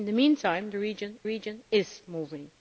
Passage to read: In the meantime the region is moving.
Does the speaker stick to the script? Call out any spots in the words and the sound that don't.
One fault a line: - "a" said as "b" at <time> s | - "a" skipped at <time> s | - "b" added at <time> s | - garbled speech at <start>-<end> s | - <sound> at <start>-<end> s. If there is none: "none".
- "region" added at 1.2 s